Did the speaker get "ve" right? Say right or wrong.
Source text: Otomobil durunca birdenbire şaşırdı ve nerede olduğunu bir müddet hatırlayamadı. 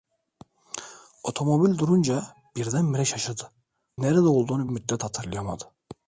wrong